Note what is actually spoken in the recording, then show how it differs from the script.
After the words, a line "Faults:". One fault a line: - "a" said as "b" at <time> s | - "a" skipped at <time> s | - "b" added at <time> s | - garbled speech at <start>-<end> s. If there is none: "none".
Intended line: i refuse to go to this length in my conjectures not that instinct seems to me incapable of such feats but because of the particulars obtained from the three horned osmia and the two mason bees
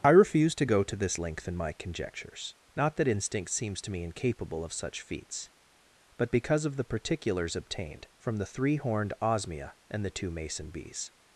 i refuse to go to this length in my conjectures not that instinct seems to me incapable of such feats but because of the particulars obtained from the three horned osmia and the two mason bees
Faults:
none